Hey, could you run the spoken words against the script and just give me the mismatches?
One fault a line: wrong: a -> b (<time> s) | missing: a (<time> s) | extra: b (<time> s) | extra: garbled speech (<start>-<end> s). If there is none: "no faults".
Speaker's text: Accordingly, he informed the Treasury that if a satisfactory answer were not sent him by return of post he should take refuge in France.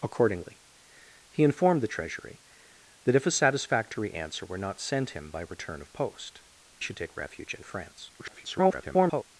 missing: he (6.4 s)
extra: garbled speech (8.2-9.2 s)